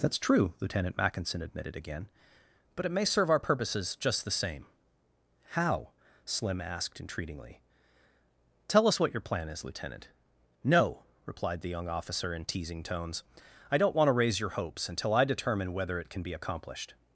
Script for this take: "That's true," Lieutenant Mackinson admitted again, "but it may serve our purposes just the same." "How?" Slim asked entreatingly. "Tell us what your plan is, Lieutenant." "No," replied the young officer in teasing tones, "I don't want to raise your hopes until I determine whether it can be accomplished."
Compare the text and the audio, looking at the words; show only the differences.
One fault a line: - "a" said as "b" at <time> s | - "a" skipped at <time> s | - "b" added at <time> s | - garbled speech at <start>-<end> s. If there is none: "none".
none